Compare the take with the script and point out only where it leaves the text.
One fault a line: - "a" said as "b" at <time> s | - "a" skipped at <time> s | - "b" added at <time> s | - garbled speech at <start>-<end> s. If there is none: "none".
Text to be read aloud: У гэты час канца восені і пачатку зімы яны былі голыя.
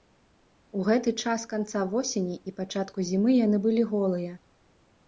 none